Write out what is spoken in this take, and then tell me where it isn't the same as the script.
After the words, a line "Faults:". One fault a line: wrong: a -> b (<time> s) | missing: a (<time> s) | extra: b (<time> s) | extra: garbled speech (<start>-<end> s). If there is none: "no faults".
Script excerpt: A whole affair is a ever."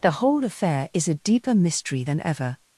The whole affair is a deeper mystery than ever."
Faults:
wrong: A -> The (0.0 s)
extra: deeper mystery than (1.1 s)